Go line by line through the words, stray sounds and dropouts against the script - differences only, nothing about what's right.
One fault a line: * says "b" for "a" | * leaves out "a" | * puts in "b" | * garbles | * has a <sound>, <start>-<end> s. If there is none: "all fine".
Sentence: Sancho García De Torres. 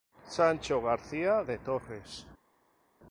all fine